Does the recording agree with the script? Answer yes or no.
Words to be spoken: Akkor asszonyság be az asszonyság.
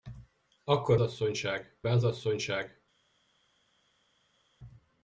yes